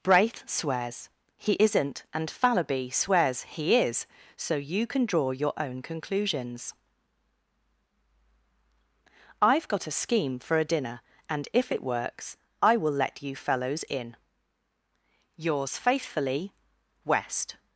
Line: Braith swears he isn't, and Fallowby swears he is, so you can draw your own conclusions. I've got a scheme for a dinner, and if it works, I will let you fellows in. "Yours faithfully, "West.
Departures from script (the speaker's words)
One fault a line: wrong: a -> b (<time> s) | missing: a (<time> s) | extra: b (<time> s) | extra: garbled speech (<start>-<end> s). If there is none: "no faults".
no faults